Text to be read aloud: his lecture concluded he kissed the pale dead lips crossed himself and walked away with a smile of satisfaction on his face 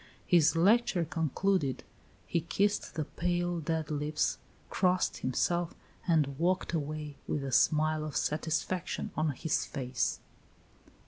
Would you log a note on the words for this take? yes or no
no